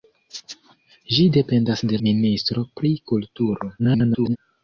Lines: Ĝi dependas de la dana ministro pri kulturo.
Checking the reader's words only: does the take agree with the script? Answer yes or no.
no